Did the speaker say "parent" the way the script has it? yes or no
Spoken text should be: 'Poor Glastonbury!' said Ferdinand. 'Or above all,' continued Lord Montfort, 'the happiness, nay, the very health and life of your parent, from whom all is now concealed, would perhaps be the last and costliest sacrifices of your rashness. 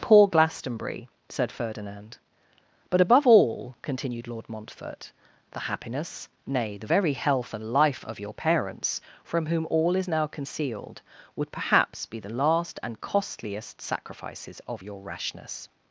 no